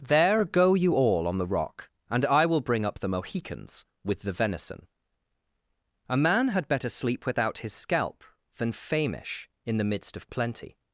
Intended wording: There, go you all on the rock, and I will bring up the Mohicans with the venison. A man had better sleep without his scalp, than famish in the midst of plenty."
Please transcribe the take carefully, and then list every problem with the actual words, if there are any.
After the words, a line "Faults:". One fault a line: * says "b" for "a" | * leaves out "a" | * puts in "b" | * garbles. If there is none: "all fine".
There, go you all on the rock, and I will bring up the Mohicans with the venison. A man had better sleep without his scalp, than famish in the midst of plenty."
Faults:
all fine